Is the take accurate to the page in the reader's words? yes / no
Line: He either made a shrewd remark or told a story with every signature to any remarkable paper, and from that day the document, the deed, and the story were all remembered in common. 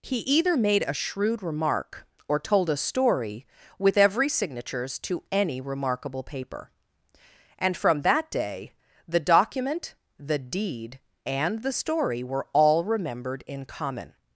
no